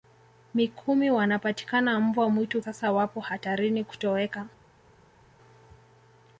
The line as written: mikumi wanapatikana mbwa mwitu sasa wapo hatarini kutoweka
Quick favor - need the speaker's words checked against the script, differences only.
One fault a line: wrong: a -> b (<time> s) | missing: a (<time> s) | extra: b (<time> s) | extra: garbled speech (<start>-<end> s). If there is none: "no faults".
no faults